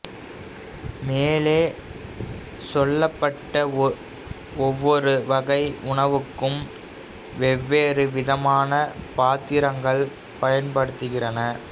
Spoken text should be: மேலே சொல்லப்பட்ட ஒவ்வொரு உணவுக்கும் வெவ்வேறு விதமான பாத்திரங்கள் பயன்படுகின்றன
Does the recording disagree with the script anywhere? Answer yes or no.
yes